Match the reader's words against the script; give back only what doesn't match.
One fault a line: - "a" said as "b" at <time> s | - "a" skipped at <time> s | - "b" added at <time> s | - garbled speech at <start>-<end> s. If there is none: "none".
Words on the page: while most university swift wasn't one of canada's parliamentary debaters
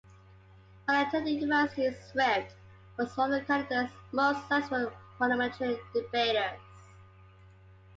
- "most" said as "attending" at 1.1 s
- "wasn't" said as "was" at 3.0 s
- "most successful" added at 4.1 s